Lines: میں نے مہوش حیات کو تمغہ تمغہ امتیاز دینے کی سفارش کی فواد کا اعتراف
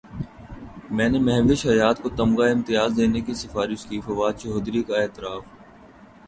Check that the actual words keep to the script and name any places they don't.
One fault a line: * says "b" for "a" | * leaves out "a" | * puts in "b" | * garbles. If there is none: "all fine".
* leaves out "تمغہ"
* puts in "چوہدری"